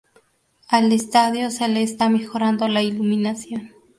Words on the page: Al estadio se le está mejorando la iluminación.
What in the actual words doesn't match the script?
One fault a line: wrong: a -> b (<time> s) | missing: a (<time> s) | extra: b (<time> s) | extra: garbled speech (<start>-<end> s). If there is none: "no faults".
no faults